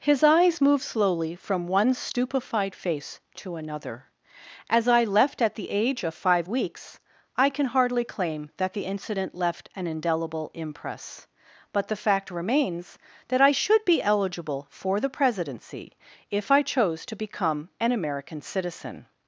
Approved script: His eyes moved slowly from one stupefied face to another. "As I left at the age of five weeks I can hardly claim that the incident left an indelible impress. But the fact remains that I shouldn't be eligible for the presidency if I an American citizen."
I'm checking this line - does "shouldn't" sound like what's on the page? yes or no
no